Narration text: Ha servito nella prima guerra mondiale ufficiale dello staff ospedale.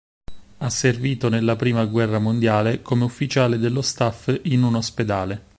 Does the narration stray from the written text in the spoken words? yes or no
yes